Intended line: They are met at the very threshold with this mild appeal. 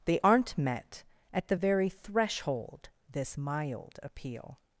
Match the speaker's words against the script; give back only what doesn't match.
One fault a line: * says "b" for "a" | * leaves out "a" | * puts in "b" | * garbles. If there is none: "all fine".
* says "aren't" for "are"
* leaves out "with"